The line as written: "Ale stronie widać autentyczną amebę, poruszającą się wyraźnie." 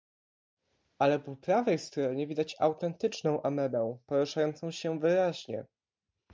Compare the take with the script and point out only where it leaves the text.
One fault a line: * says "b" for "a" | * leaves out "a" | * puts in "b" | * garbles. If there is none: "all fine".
* puts in "po prawej"